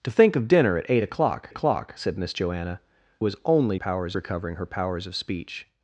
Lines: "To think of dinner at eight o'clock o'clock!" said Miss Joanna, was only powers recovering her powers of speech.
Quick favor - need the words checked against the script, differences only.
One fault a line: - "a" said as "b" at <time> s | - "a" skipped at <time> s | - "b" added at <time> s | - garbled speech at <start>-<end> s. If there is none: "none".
none